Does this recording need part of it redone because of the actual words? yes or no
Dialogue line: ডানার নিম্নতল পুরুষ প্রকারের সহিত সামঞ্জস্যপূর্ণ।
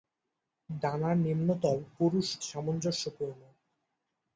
yes